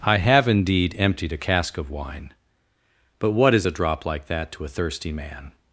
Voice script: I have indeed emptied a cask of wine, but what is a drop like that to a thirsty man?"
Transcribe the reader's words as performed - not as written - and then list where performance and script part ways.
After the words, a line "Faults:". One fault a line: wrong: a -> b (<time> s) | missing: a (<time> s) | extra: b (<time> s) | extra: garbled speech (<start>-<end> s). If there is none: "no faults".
I have indeed emptied a cask of wine, but what is a drop like that to a thirsty man?"
Faults:
no faults